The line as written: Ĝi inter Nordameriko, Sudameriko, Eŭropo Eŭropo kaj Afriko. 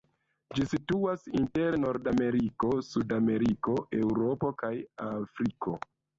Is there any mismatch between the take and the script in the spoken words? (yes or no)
yes